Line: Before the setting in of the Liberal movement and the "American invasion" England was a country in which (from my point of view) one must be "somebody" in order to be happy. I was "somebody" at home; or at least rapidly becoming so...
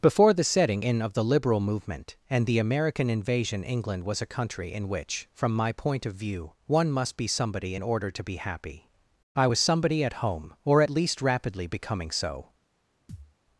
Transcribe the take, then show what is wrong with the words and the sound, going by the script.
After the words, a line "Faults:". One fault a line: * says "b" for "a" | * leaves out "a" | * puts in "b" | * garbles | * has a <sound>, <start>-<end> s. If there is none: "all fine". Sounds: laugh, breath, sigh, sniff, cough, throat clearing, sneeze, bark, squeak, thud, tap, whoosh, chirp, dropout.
Before the setting in of the Liberal movement and the "American invasion" England was a country in which (from my point of view) one must be "somebody" in order to be happy. I was "somebody" at home; or at least rapidly becoming so...
Faults:
* has a thud, 13.1-13.4 s